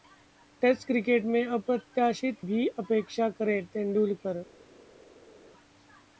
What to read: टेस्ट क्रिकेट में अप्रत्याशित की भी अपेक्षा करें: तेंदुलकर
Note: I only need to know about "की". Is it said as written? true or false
false